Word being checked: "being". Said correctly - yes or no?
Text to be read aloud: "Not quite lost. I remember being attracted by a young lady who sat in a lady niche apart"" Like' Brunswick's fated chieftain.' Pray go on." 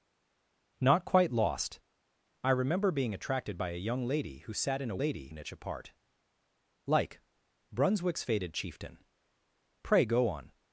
yes